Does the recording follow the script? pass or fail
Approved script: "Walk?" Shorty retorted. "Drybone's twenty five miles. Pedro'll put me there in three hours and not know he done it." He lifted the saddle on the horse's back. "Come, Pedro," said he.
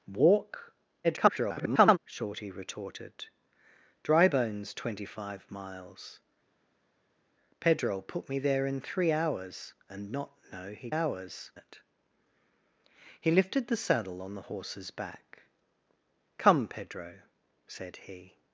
fail